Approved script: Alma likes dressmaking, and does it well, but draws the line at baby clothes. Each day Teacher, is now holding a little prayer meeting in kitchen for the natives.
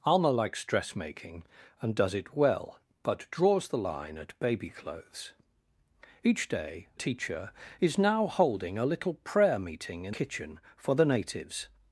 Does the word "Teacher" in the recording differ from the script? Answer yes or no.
no